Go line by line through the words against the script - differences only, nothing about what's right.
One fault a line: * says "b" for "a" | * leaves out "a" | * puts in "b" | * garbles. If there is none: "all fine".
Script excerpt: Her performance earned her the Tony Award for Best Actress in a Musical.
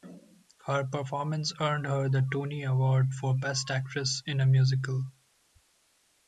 all fine